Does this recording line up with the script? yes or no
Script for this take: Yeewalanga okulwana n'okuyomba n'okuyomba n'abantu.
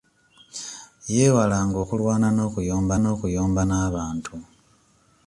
yes